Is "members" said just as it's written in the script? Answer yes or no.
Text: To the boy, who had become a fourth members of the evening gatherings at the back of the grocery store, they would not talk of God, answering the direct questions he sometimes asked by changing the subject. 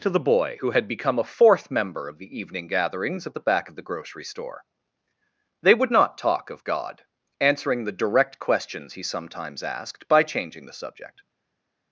no